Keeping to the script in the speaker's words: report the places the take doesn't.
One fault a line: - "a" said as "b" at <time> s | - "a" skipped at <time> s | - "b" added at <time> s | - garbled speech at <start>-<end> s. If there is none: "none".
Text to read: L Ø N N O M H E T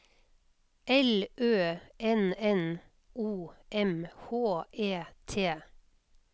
none